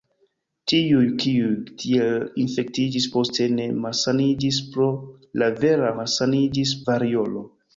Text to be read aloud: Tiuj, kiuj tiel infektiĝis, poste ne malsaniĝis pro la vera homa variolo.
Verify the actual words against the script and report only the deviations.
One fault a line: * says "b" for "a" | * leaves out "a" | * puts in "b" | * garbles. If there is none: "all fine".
* says "malsaniĝis" for "homa"